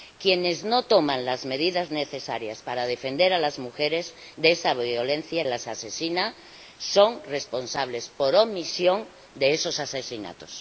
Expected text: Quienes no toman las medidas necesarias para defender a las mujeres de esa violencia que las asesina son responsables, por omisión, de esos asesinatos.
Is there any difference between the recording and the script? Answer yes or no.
yes